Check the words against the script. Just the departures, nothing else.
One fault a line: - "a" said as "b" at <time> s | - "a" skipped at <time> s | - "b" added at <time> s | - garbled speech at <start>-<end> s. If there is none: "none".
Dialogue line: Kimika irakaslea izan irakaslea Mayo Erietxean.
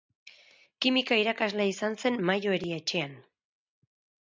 - "irakaslea" said as "zen" at 2.0 s